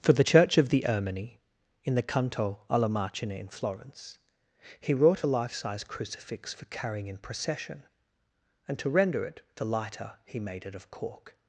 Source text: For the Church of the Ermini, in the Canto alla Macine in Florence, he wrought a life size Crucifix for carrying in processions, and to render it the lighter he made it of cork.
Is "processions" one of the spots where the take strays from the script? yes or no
yes